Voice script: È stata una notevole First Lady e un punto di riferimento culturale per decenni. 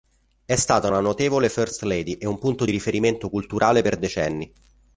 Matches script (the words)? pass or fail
pass